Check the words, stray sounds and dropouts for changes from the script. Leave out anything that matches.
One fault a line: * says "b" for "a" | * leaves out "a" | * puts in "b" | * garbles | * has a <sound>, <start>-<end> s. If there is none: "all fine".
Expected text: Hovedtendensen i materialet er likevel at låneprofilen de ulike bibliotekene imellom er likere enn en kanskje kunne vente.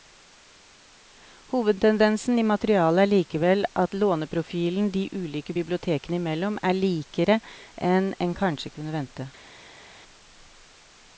all fine